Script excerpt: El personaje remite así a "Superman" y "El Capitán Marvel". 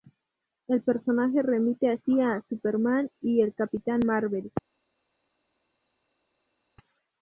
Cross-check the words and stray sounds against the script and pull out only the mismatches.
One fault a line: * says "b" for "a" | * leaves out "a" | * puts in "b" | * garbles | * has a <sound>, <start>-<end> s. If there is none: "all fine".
all fine